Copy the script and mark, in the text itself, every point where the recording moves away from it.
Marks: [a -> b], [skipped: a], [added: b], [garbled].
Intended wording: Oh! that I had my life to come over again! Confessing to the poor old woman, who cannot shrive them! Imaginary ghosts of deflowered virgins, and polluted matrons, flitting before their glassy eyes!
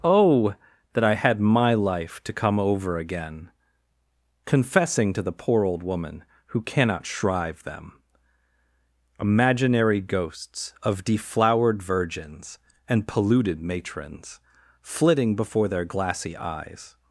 Oh! that I had my life to come over again! Confessing to the poor old woman, who cannot shrive them! Imaginary ghosts of deflowered virgins, and polluted matrons, flitting before their glassy eyes!